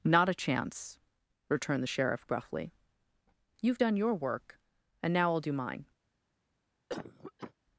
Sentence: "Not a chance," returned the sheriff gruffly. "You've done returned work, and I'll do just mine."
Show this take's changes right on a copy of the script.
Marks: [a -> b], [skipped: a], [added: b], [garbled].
"Not a chance," returned the sheriff gruffly. "You've done [returned -> your] work, and [added: now] I'll do [skipped: just] mine."